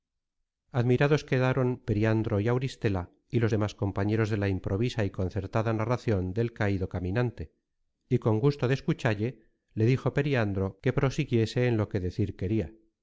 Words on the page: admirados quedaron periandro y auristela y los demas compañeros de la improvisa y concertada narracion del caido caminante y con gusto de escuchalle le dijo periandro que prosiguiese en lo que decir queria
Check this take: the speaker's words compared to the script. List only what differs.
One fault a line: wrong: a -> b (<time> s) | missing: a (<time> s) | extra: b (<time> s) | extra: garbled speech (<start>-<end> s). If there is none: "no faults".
no faults